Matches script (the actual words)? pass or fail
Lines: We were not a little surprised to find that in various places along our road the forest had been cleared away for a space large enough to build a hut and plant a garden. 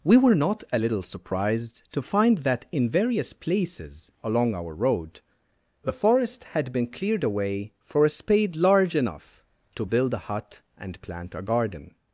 fail